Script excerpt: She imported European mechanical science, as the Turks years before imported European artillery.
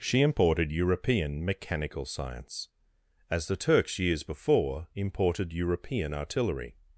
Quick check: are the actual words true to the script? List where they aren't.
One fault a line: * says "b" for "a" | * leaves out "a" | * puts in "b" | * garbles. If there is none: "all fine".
all fine